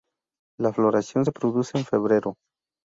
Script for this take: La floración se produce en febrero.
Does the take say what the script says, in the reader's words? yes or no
yes